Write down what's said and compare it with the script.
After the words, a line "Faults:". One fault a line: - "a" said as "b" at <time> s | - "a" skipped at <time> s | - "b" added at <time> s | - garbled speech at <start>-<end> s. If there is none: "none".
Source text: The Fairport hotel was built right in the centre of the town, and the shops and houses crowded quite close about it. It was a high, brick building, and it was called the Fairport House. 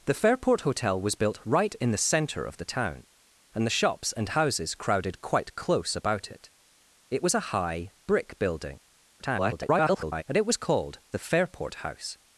The Fairport hotel was built right in the centre of the town, and the shops and houses crowded quite close about it. It was a high, brick building, [garbled] and it was called the Fairport House.
Faults:
- garbled speech at 9.2-10.2 s